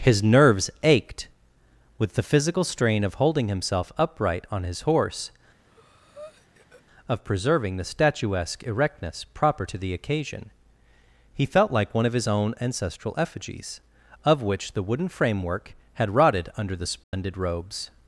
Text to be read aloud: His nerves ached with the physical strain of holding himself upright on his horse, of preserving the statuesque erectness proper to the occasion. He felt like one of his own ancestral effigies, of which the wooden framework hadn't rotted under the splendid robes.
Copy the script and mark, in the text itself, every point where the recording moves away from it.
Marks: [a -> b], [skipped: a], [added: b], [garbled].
His nerves ached with the physical strain of holding himself upright on his horse, of preserving the statuesque erectness proper to the occasion. He felt like one of his own ancestral effigies, of which the wooden framework [hadn't -> had] rotted under the splendid robes.